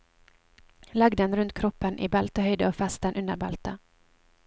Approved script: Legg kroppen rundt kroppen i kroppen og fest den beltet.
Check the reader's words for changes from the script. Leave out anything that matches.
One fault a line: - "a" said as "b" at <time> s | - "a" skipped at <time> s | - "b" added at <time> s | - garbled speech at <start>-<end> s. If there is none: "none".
- "kroppen" said as "den" at 1.2 s
- "kroppen" said as "beltehøyde" at 2.2 s
- "under" added at 3.2 s